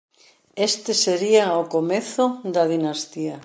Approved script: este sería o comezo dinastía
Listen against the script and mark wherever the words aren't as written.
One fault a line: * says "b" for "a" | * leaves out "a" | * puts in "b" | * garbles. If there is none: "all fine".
* puts in "da"